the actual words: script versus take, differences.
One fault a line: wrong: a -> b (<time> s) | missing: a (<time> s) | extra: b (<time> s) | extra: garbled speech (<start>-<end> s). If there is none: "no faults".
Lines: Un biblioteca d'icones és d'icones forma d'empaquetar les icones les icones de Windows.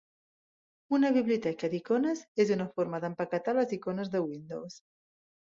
wrong: Un -> Una (1.0 s)
wrong: d'icones -> una (2.6 s)
missing: les icones (4.1 s)